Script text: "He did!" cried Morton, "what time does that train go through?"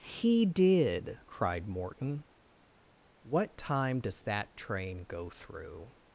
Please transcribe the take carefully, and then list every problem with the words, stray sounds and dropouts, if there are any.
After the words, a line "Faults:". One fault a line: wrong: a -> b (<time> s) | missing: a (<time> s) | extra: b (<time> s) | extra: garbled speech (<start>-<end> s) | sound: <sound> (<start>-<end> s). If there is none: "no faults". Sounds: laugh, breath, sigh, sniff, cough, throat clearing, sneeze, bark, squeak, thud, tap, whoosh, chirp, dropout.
"He did!" cried Morton, "what time does that train go through?"
Faults:
no faults